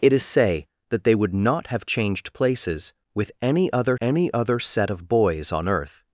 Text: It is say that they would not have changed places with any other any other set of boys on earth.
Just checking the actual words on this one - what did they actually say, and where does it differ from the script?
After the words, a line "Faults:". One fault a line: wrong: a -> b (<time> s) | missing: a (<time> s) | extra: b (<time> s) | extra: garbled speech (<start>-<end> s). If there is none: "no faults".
It is say that they would not have changed places with any other any other set of boys on earth.
Faults:
no faults